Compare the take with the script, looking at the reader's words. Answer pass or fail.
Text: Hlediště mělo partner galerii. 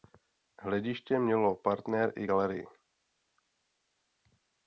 fail